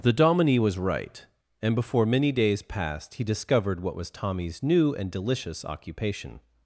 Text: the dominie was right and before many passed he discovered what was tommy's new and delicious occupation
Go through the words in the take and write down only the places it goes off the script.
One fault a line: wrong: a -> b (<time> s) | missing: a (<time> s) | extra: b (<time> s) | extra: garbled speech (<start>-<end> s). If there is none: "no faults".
extra: days (2.3 s)